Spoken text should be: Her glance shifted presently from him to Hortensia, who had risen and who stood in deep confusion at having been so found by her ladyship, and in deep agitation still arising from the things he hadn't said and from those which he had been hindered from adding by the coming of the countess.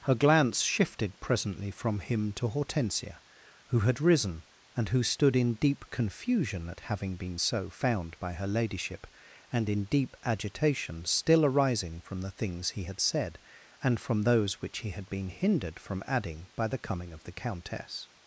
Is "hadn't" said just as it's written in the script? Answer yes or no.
no